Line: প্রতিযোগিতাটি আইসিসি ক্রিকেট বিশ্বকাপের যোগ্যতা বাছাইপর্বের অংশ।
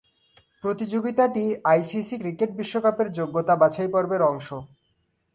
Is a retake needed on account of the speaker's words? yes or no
no